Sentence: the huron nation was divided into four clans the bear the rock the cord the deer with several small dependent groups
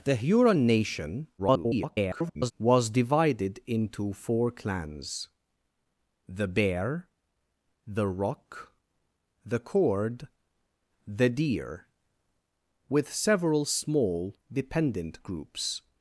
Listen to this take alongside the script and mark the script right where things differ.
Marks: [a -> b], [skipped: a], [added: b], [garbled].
the huron nation [garbled] was divided into four clans the bear the rock the cord the deer with several small dependent groups